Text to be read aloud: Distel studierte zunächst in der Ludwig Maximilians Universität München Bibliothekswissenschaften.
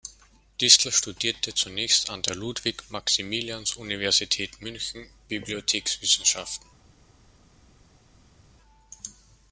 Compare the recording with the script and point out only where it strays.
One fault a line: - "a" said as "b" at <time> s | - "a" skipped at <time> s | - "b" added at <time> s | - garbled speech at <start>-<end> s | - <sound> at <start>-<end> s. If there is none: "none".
- "in" said as "an" at 2.1 s